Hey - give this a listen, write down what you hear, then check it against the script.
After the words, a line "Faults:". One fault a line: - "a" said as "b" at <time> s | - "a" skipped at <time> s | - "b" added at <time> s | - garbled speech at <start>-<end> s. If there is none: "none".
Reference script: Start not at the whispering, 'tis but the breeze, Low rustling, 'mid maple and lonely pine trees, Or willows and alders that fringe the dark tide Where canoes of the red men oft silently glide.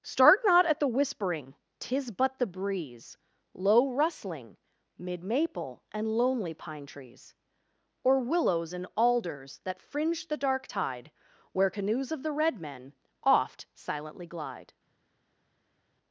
Start not at the whispering, 'tis but the breeze, Low rustling, 'mid maple and lonely pine trees, Or willows and alders that fringe the dark tide Where canoes of the red men oft silently glide.
Faults:
none